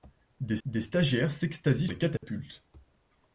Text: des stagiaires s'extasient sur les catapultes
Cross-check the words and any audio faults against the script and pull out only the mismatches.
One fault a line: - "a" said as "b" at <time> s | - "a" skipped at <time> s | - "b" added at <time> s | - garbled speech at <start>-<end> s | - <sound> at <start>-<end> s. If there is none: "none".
- "des" added at 0.6 s
- "sur" skipped at 1.9 s
- dropout at 2.2-2.2 s